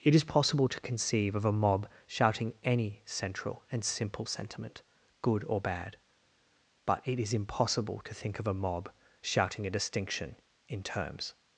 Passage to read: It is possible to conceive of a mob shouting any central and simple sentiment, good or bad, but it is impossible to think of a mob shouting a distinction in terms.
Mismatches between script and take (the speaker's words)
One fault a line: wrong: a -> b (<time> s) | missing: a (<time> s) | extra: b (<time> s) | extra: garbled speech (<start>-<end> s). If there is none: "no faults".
no faults